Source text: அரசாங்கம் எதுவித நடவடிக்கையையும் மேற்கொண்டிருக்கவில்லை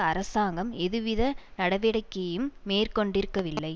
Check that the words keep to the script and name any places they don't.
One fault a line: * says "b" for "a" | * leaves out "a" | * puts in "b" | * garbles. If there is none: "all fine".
all fine